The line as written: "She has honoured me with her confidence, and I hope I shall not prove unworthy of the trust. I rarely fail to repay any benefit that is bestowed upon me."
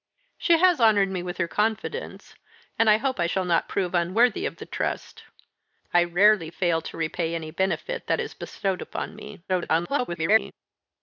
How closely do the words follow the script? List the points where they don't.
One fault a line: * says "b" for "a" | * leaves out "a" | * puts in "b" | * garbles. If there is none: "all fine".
* garbles